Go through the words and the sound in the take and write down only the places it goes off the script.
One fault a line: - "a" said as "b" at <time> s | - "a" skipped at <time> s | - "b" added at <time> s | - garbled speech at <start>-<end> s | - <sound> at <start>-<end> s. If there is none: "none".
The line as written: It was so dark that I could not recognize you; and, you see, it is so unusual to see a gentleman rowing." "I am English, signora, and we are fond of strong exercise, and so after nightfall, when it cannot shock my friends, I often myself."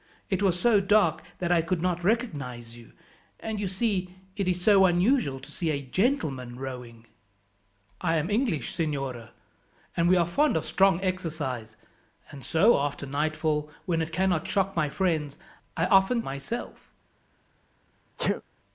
- sneeze at 18.2-18.4 s